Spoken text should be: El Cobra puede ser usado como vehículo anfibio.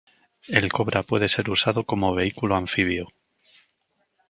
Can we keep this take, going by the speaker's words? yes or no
yes